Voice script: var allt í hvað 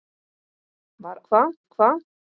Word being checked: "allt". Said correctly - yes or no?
no